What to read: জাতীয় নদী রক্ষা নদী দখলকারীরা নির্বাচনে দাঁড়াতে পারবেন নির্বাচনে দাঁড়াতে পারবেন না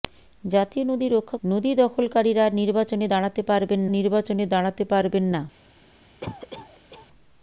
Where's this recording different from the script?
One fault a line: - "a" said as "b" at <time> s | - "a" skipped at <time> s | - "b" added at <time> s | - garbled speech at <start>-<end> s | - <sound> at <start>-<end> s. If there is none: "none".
- cough at 6.2-7.1 s